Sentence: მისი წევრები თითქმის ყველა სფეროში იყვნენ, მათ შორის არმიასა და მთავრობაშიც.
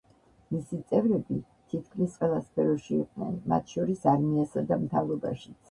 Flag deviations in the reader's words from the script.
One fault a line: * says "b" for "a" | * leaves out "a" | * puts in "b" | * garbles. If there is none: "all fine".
all fine